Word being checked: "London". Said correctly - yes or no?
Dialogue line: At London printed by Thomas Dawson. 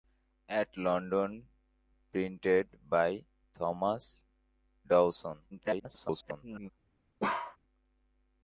yes